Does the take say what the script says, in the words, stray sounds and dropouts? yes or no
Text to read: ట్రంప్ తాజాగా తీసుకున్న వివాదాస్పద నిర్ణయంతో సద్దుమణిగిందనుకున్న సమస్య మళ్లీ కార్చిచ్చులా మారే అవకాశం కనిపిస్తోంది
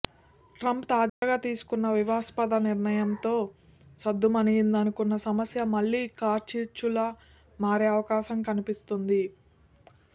no